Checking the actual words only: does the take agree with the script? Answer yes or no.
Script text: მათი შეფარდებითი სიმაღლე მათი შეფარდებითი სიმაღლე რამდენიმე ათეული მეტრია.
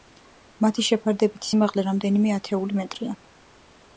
no